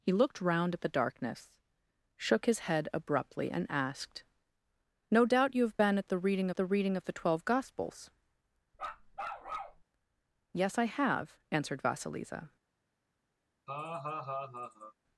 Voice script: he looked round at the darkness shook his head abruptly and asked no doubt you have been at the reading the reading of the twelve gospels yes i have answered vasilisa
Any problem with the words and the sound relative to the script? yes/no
yes